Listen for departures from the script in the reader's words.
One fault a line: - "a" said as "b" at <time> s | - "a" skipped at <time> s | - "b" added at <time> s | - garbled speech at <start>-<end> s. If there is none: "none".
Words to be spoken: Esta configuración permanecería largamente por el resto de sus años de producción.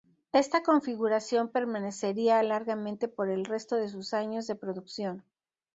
none